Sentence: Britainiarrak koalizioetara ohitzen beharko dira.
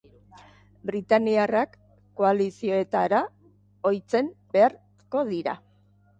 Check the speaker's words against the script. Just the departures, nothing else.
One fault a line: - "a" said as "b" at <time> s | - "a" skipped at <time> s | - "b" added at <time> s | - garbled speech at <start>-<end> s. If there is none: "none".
none